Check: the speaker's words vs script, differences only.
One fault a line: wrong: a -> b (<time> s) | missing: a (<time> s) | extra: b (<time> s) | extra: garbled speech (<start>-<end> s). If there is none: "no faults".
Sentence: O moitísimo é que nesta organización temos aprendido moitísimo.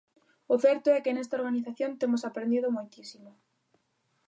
wrong: moitísimo -> certo (0.7 s)